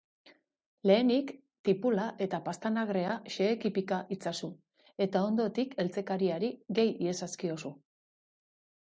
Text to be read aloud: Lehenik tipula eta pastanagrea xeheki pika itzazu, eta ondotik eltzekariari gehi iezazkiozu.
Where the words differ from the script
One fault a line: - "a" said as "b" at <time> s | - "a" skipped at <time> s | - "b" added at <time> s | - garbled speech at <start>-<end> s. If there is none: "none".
none